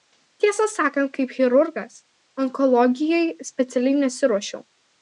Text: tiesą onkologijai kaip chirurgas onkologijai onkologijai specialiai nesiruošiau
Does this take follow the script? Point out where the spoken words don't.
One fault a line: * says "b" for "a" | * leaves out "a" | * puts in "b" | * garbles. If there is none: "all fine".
* says "sakant" for "onkologijai"
* leaves out "onkologijai"